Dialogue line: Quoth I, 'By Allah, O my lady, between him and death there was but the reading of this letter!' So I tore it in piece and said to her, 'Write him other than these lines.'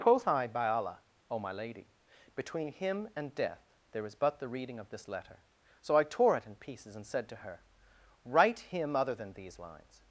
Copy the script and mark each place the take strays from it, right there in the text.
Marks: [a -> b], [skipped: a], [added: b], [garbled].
Quoth I, 'By Allah, O my lady, between him and death there [was -> is] but the reading of this letter!' So I tore it in [piece -> pieces] and said to her, 'Write him other than these lines.'